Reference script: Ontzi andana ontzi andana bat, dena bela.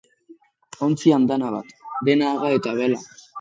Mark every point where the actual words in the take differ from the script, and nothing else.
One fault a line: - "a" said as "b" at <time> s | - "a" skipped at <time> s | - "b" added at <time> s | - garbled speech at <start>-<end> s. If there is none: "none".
- "ontzi andana bat dena" said as "bat dena haga eta" at 1.6 s